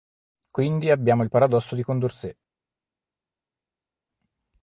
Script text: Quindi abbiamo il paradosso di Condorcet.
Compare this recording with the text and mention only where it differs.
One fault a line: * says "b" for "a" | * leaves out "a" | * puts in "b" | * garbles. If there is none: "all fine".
all fine